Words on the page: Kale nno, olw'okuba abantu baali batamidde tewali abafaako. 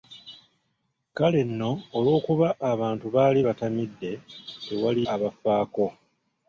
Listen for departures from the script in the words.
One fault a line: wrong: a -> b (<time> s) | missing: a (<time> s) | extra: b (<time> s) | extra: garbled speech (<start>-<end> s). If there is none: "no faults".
no faults